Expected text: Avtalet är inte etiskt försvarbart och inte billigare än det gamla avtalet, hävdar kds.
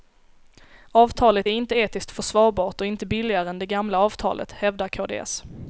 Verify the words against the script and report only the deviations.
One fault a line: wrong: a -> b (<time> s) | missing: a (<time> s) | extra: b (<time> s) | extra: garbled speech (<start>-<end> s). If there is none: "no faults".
no faults